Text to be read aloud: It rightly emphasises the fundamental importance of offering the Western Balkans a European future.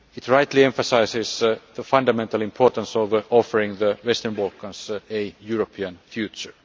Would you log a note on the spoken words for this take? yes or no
no